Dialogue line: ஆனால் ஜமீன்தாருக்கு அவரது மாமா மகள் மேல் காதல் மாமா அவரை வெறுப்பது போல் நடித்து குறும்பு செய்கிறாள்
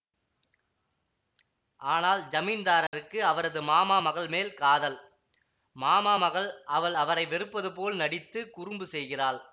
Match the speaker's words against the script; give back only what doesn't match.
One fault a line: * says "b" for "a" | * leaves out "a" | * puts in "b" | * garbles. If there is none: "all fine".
* puts in "மகள் அவள்"